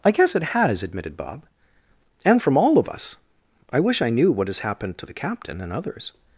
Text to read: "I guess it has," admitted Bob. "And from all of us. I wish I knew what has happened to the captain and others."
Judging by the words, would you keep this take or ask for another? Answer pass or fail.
pass